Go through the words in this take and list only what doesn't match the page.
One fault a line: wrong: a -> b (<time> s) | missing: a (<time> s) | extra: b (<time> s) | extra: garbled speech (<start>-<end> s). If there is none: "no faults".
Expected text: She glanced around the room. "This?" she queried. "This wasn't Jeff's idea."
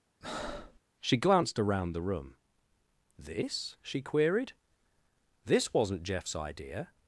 no faults